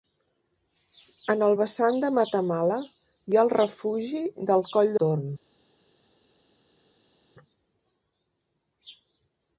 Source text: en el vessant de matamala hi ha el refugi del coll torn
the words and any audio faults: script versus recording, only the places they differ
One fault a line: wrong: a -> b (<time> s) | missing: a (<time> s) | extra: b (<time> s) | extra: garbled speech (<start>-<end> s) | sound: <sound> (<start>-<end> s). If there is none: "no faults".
no faults